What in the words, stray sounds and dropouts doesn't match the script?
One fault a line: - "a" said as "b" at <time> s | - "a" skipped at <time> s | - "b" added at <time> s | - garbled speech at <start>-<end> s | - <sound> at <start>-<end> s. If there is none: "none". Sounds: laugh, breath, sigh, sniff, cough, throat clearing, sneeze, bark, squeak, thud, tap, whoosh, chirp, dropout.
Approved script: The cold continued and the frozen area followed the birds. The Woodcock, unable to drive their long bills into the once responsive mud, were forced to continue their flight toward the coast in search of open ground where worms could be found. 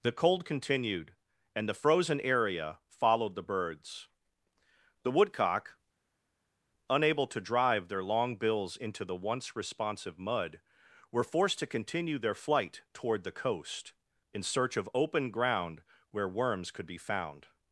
none